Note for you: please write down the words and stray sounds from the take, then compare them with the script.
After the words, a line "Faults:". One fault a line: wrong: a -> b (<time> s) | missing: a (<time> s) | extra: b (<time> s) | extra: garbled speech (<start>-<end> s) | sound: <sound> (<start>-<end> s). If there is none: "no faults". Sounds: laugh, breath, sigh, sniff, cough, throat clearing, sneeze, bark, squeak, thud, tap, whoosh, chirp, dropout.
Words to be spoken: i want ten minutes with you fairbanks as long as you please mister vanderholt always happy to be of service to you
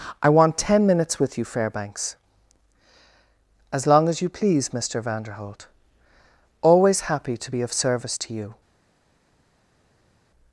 i want ten minutes with you fairbanks as long as you please mister vanderholt always happy to be of service to you
Faults:
no faults